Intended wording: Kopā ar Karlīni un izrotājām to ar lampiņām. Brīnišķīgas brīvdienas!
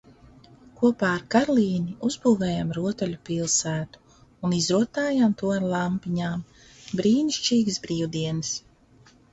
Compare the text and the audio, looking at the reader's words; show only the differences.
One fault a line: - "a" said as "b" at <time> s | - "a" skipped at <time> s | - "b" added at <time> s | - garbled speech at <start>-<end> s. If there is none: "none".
- "uzbūvējām rotaļu pilsētu" added at 2.1 s